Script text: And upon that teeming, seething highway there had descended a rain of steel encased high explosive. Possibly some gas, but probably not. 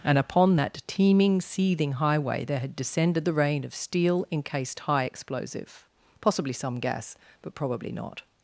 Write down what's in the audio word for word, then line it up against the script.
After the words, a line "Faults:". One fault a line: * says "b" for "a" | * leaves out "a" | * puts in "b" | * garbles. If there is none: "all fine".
And upon that teeming, seething highway there had descended the rain of steel encased high explosive. Possibly some gas, but probably not.
Faults:
* says "the" for "a"